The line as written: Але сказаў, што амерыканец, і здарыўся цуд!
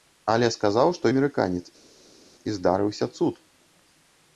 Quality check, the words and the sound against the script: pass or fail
pass